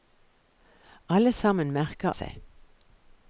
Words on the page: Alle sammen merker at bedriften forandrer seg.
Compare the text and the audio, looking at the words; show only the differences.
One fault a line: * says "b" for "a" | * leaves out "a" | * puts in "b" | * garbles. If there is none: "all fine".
* leaves out "at bedriften forandrer"